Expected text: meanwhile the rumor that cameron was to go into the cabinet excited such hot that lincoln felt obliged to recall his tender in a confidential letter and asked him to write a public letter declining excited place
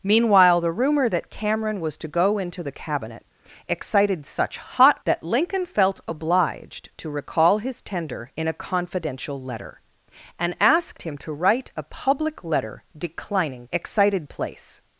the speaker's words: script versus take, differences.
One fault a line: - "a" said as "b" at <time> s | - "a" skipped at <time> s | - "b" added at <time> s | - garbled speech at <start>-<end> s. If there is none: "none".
none